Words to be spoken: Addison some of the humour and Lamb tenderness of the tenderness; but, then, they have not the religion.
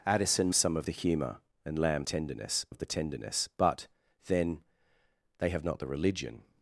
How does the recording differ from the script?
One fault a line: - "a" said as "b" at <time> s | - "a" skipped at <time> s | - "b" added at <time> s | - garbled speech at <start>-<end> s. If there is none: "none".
none